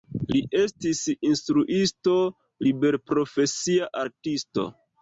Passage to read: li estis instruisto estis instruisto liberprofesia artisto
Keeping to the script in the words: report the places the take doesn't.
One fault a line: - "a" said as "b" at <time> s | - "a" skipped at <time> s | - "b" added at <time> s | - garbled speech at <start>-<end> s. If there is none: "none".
- "estis instruisto" skipped at 2.2 s